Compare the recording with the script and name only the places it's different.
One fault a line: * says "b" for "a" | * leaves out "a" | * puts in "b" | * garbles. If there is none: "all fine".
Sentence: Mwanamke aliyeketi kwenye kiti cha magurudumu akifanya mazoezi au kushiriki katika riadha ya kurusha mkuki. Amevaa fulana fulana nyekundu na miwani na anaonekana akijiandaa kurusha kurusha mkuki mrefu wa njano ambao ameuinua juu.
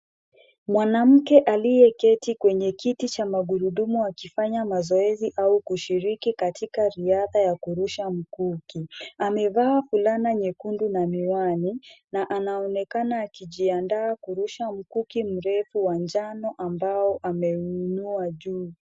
* leaves out "fulana"
* leaves out "kurusha"